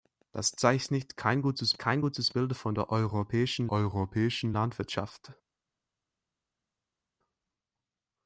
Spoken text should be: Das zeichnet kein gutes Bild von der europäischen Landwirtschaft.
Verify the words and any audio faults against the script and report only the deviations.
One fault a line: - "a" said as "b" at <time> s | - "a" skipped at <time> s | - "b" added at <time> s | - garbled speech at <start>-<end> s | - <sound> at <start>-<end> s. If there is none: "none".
- "kein gutes" added at 1.8 s
- "europäischen" added at 3.7 s